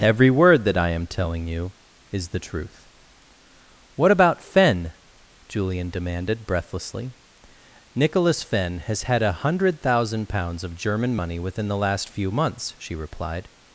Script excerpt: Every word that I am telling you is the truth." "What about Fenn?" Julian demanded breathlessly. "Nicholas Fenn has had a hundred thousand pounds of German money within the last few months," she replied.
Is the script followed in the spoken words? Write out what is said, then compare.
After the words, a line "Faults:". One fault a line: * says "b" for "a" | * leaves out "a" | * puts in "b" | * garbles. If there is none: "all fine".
Every word that I am telling you is the truth." "What about Fenn?" Julian demanded breathlessly. "Nicholas Fenn has had a hundred thousand pounds of German money within the last few months," she replied.
Faults:
all fine